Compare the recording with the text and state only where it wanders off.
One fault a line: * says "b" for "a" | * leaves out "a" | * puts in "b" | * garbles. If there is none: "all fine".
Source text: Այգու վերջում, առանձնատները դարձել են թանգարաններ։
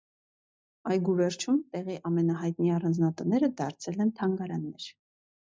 * puts in "տեղի ամենահայտնի"